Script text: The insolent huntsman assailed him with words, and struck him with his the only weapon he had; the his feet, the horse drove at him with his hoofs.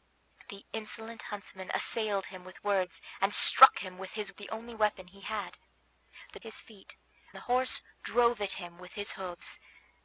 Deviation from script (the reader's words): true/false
false